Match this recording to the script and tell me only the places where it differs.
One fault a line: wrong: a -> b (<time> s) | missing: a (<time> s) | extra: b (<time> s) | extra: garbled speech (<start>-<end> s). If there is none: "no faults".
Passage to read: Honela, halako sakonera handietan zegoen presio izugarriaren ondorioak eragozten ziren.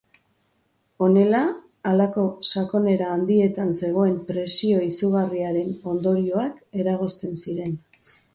no faults